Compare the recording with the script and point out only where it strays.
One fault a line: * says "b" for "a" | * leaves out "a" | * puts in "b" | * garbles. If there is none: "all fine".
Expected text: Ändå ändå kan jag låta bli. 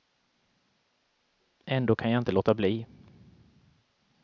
* leaves out "ändå"
* puts in "inte"